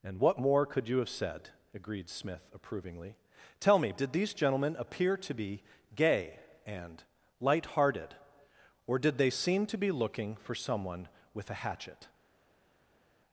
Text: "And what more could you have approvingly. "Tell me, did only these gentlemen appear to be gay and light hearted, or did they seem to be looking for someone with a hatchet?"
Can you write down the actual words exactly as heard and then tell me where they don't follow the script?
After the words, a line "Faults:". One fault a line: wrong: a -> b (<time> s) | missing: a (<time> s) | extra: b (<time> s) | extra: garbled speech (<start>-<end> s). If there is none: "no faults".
"And what more could you have said?" agreed Smith approvingly. "Tell me, did these gentlemen appear to be gay and light hearted, or did they seem to be looking for someone with a hatchet?"
Faults:
extra: said agreed Smith (1.1 s)
missing: only (4.1 s)